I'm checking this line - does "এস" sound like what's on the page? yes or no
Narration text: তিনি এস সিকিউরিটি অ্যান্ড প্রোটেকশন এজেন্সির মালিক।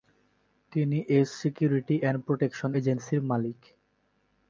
yes